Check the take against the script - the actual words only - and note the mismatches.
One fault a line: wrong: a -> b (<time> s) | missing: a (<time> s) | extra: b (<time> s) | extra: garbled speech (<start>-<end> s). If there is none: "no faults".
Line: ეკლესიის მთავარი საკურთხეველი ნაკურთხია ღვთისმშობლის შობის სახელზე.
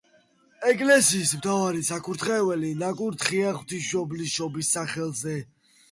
no faults